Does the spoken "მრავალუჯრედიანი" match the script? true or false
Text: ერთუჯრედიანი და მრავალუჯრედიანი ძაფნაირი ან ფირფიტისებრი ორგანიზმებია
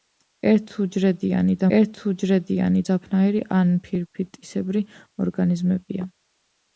false